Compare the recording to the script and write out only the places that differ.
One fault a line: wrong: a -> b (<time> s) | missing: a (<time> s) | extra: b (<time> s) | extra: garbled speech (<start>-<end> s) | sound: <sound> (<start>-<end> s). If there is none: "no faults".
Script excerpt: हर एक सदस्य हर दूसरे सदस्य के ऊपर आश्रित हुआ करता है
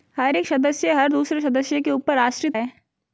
missing: हुआ करता (2.6 s)